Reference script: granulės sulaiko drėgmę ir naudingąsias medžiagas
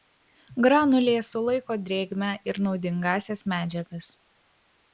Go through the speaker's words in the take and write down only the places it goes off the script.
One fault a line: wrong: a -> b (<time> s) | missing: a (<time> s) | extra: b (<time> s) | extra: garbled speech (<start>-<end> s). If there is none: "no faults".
no faults